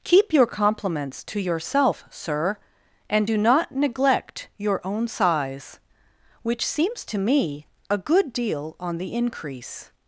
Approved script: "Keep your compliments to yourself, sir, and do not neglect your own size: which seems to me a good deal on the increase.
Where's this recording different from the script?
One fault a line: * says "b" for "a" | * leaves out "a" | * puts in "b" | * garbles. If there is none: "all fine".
all fine